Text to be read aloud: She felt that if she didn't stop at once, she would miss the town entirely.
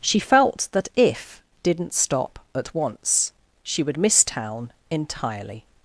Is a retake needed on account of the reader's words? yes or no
yes